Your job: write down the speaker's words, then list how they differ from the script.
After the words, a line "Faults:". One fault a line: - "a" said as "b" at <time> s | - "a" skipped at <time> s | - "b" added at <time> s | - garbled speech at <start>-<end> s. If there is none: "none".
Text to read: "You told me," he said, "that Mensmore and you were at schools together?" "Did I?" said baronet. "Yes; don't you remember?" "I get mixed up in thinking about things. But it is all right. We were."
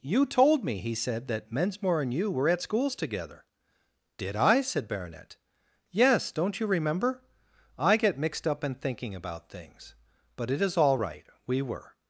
"You told me," he said, "that Mensmore and you were at schools together?" "Did I?" said baronet. "Yes; don't you remember?" "I get mixed up in thinking about things. But it is all right. We were."
Faults:
none